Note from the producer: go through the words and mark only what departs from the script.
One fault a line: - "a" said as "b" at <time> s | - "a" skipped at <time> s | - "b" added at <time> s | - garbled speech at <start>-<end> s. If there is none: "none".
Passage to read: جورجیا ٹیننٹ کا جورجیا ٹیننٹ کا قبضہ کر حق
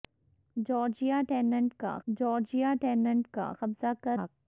none